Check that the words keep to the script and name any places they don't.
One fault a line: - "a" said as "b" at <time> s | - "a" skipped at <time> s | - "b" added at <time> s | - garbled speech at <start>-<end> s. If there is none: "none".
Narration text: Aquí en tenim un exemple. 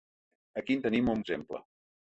none